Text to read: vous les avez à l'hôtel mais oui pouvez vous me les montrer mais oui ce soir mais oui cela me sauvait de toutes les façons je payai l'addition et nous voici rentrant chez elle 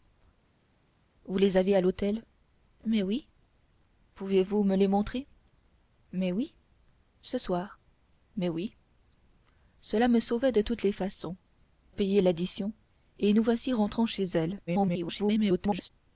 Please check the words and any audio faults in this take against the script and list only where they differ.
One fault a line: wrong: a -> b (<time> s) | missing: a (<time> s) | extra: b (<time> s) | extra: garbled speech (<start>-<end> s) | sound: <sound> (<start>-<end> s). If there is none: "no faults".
missing: je (11.4 s)
extra: garbled speech (14.7-15.9 s)